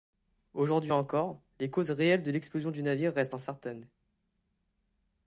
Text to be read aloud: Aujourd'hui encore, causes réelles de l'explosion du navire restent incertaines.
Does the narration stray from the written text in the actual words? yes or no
yes